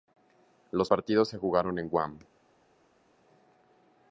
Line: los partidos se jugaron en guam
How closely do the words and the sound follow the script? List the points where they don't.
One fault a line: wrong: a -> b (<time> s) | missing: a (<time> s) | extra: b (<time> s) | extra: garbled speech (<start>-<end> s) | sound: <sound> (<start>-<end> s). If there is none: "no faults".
no faults